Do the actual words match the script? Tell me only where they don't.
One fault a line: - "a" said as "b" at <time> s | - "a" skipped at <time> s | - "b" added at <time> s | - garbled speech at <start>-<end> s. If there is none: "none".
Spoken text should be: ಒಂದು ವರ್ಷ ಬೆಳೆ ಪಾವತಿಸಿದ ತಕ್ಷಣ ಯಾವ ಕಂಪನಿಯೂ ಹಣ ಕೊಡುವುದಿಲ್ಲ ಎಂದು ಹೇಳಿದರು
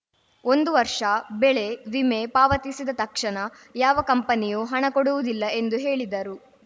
- "ವಿಮೆ" added at 1.9 s